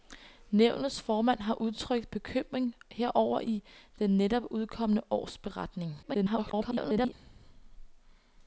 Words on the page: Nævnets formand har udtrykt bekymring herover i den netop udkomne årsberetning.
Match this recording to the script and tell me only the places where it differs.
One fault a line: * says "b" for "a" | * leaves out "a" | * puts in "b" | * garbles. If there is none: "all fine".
* garbles